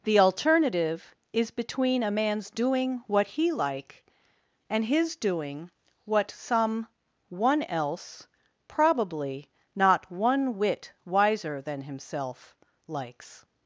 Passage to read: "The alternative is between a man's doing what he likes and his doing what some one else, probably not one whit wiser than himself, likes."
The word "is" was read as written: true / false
true